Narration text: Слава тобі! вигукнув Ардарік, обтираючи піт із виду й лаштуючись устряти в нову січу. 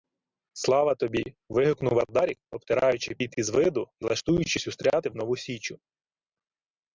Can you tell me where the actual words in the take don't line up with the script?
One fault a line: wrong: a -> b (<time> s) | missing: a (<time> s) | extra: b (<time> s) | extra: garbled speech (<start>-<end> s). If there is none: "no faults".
no faults